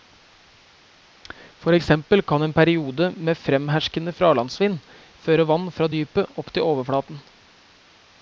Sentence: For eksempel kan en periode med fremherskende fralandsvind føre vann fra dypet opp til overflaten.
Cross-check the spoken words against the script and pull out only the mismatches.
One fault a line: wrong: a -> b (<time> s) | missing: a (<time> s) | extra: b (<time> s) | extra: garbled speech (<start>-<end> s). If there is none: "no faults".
no faults